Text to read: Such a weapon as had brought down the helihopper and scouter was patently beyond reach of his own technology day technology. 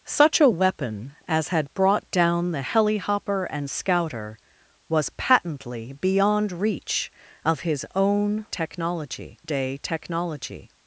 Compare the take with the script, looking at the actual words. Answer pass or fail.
pass